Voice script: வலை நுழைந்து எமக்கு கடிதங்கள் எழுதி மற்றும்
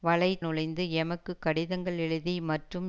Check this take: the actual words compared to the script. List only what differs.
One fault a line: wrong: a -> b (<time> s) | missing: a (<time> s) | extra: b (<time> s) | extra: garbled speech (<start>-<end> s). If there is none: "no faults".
no faults